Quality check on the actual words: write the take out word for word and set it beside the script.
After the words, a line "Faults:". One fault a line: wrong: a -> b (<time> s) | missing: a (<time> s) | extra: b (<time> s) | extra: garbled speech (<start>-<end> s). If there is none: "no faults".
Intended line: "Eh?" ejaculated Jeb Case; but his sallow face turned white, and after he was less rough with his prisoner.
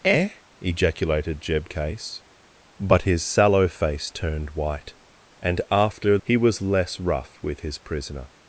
"Eh?" ejaculated Jeb Case; but his sallow face turned white, and after he was less rough with his prisoner.
Faults:
no faults